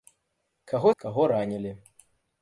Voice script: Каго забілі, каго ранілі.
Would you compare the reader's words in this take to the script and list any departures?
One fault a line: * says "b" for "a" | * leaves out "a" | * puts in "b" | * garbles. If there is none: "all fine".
* leaves out "забілі"